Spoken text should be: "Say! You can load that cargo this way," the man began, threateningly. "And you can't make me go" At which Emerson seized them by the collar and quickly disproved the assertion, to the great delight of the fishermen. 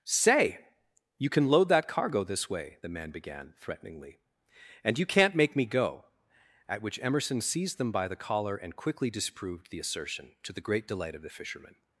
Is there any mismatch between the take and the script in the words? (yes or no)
no